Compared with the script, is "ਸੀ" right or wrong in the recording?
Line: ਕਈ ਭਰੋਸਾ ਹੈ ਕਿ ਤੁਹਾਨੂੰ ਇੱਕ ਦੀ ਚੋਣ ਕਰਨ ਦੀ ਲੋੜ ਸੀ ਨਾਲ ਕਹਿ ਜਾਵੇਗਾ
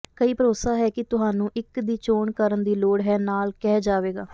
wrong